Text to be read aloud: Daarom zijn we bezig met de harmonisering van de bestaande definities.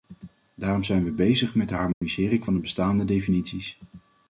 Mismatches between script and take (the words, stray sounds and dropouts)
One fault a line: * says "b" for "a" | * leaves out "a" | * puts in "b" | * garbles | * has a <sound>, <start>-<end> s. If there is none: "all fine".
* has a dropout, 1.9-2.0 s